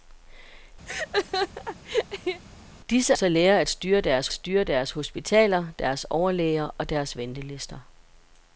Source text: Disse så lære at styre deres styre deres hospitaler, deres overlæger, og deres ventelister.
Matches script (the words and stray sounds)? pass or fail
fail